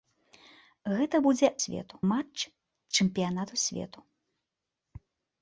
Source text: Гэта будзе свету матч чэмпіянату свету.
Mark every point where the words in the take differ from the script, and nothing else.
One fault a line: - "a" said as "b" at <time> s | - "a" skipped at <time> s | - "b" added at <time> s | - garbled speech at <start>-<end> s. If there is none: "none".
none